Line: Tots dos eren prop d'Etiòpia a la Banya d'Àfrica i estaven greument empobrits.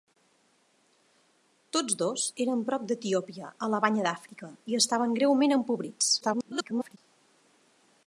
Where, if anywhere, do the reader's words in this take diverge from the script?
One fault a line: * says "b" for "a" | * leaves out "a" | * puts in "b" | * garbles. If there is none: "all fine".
* garbles